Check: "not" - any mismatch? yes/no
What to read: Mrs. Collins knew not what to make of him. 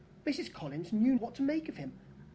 yes